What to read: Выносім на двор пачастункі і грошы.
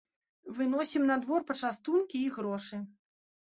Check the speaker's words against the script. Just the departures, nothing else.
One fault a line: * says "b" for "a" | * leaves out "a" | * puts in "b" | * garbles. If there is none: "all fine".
all fine